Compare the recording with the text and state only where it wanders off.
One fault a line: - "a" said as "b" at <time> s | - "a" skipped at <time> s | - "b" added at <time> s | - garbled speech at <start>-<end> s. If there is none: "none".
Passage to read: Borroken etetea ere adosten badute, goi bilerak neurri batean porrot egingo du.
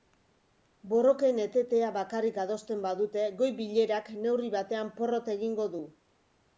- "ere" said as "bakarrik" at 2.0 s